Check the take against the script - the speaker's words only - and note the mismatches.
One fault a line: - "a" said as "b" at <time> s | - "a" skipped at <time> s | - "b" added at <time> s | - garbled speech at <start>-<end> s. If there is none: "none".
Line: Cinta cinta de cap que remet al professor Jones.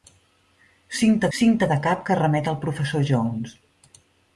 none